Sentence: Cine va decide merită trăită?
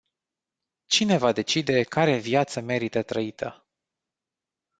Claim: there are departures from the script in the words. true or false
true